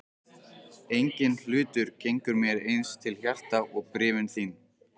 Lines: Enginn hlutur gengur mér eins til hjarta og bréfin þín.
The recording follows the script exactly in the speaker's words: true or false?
true